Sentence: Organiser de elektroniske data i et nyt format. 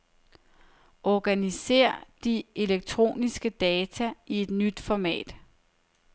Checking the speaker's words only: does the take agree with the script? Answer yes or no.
yes